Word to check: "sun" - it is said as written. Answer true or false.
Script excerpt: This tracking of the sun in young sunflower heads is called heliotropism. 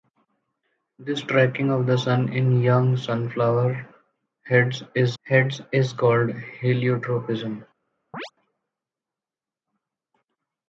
true